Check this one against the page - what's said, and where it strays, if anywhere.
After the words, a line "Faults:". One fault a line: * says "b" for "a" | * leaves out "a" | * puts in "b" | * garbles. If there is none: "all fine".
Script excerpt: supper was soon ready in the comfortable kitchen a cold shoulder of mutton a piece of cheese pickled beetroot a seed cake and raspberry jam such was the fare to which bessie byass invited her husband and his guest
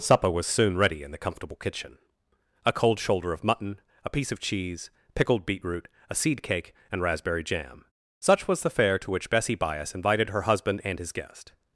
supper was soon ready in the comfortable kitchen a cold shoulder of mutton a piece of cheese pickled beetroot a seed cake and raspberry jam such was the fare to which bessie byass invited her husband and his guest
Faults:
all fine